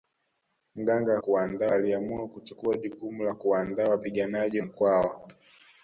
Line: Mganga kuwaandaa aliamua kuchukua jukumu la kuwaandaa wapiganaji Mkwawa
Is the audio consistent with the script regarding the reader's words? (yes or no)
yes